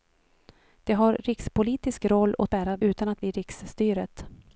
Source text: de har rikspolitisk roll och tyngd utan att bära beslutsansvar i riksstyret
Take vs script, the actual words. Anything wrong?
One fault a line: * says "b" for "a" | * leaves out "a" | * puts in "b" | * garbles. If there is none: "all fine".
* says "bära" for "tyngd"
* leaves out "bära beslutsansvar"